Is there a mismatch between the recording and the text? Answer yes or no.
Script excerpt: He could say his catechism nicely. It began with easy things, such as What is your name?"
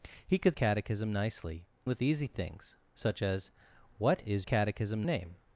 yes